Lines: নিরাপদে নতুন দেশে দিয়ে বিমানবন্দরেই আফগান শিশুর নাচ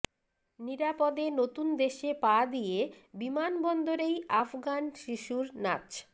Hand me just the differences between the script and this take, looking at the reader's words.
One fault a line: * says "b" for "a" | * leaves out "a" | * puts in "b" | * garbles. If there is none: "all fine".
* puts in "পা"